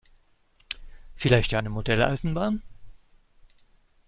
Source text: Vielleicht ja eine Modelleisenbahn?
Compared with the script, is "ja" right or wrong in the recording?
right